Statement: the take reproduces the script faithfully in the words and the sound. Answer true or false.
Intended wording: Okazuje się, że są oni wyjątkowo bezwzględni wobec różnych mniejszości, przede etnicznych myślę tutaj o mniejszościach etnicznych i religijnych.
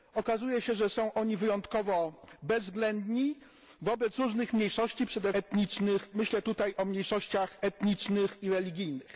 true